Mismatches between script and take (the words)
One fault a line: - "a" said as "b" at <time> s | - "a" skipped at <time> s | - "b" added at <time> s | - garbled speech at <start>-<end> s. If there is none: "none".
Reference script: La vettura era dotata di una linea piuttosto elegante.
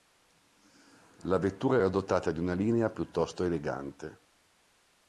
none